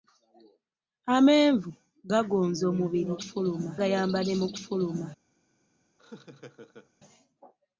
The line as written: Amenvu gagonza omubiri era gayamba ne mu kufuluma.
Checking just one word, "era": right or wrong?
wrong